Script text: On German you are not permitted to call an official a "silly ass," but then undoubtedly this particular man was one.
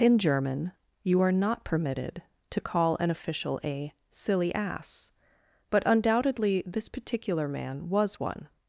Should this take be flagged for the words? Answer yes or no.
yes